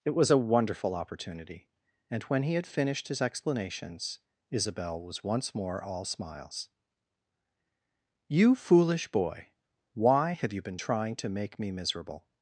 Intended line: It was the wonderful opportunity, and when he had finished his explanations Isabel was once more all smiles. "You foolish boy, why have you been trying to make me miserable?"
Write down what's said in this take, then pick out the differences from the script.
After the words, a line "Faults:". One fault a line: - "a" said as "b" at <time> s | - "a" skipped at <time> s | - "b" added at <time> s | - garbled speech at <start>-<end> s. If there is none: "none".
It was a wonderful opportunity, and when he had finished his explanations Isabel was once more all smiles. "You foolish boy, why have you been trying to make me miserable?"
Faults:
- "the" said as "a" at 0.3 s